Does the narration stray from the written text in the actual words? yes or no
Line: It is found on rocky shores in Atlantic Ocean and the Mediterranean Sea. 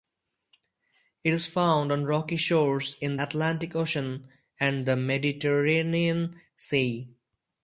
no